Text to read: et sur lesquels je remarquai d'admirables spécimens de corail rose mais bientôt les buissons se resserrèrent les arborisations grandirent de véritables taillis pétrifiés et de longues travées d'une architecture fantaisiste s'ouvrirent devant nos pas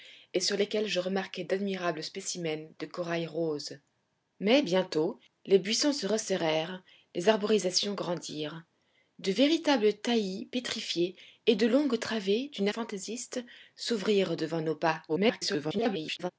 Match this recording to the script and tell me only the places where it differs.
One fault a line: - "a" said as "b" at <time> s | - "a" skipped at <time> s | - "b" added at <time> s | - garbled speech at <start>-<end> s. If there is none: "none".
- "architecture" skipped at 12.7 s
- garbled speech at 15.1-16.3 s